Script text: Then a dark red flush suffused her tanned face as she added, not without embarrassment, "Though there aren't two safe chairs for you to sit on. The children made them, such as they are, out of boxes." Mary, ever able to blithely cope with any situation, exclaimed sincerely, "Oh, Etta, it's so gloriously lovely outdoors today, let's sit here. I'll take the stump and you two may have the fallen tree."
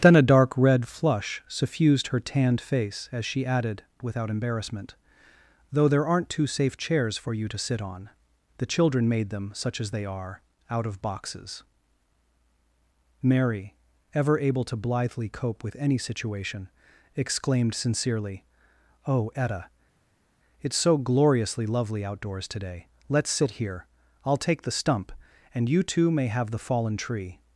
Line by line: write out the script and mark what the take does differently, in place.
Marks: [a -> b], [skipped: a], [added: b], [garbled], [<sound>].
Then a dark red flush suffused her tanned face as she added, [skipped: not] without embarrassment, "Though there aren't two safe chairs for you to sit on. The children made them, such as they are, out of boxes." Mary, ever able to blithely cope with any situation, exclaimed sincerely, "Oh, Etta, it's so gloriously lovely outdoors today, let's sit here. I'll take the stump and you two may have the fallen tree."